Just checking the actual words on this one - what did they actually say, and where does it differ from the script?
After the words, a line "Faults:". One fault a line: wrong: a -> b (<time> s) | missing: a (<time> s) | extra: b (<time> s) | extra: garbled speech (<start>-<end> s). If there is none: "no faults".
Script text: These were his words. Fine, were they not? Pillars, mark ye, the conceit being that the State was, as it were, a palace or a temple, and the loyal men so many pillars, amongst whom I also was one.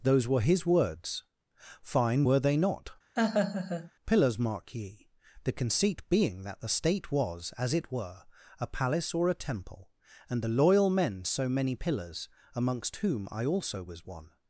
Those were his words. Fine, were they not? Pillars, mark ye, the conceit being that the State was, as it were, a palace or a temple, and the loyal men so many pillars, amongst whom I also was one.
Faults:
wrong: These -> Those (0.0 s)